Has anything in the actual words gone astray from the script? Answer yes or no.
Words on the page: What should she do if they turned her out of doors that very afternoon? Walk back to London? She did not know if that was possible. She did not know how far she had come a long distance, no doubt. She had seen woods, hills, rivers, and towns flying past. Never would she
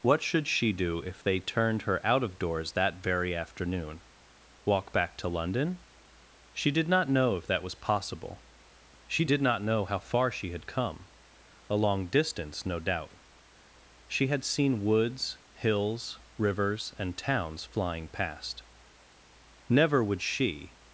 no